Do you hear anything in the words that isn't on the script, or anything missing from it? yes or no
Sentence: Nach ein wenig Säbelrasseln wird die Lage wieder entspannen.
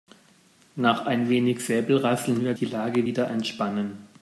no